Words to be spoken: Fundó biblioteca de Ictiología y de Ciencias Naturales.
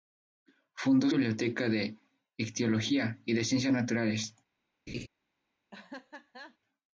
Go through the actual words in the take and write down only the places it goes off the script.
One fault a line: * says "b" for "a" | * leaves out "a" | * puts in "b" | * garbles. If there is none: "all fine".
all fine